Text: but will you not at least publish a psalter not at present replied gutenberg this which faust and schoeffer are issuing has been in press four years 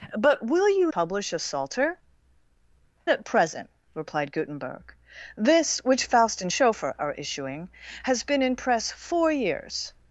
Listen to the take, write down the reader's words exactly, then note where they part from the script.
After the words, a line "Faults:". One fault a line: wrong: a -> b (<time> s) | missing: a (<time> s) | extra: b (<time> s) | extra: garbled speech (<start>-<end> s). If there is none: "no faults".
but will you publish a psalter at present replied gutenberg this which faust and schoeffer are issuing has been in press four years
Faults:
missing: not at least (0.9 s)
missing: not (2.0 s)